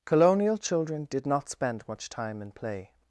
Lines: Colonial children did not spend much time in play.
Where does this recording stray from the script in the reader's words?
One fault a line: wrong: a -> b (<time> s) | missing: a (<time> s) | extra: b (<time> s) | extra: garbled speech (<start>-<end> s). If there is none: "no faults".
no faults